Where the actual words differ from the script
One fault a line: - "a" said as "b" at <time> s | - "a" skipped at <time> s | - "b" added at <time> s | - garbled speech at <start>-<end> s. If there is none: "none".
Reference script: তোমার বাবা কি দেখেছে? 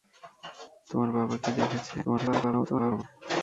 - garbled speech at 2.0-3.0 s